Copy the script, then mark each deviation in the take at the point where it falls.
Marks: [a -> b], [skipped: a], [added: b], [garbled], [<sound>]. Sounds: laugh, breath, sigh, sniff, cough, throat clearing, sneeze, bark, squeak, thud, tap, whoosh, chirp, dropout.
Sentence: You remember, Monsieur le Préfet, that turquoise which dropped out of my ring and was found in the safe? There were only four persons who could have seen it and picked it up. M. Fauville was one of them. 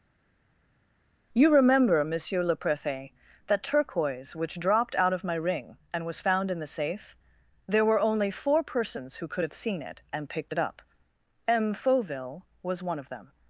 You remember, Monsieur le Préfet, that turquoise which dropped out of my ring and was found in the safe? There were only four persons who could have seen it and picked it up. M. Fauville was one of them.